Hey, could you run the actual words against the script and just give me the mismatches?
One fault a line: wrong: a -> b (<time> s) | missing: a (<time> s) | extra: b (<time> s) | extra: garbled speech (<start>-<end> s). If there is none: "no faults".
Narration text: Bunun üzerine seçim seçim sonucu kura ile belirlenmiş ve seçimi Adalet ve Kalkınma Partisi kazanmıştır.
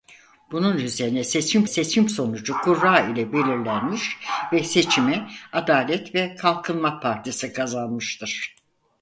no faults